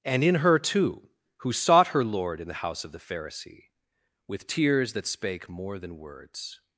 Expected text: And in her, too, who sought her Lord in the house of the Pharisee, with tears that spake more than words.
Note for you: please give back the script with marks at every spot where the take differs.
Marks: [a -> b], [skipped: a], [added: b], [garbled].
And in her, too, who sought her Lord in the house of the Pharisee, with tears that spake more than words.